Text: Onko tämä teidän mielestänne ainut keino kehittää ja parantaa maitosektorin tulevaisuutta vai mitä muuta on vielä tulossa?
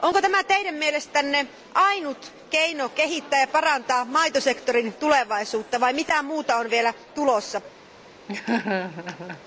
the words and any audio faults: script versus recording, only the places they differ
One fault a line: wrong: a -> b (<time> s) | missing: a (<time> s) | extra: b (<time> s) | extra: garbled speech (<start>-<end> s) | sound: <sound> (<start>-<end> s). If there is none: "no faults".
sound: laugh (8.3-9.4 s)